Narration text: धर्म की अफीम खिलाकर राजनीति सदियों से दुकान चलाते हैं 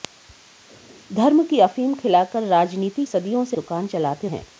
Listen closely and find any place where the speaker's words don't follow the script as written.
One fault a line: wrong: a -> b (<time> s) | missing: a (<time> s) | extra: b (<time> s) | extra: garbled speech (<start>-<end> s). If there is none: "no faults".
no faults